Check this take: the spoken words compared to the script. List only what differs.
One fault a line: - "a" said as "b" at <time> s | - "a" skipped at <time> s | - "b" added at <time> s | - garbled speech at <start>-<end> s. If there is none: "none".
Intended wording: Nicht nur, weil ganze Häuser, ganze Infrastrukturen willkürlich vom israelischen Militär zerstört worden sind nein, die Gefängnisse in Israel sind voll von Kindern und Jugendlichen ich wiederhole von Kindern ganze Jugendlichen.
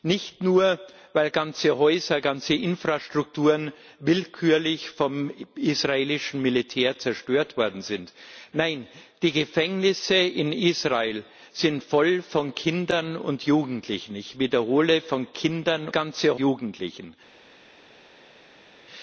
none